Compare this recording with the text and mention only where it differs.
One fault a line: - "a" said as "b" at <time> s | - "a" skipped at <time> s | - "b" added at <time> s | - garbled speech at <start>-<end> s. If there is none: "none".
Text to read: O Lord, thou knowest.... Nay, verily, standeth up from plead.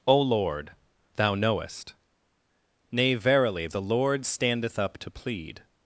- "the Lord" added at 3.7 s
- "from" said as "to" at 5.0 s